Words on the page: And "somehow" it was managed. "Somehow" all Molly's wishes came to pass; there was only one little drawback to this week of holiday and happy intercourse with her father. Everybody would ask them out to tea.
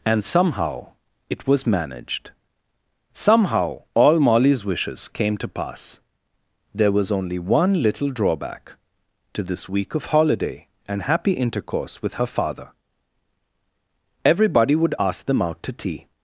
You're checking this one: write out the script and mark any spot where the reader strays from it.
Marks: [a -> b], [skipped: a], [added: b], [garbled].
And "somehow" it was managed. "Somehow" all Molly's wishes came to pass; there was only one little drawback to this week of holiday and happy intercourse with her father. Everybody would ask them out to tea.